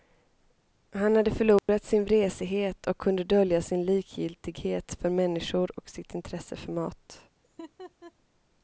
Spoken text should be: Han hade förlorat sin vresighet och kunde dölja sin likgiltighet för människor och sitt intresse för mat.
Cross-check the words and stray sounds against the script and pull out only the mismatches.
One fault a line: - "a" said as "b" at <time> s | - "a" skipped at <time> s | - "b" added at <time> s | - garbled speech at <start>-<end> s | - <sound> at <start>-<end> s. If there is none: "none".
- dropout at 1.6-1.7 s
- laugh at 7.4-8.1 s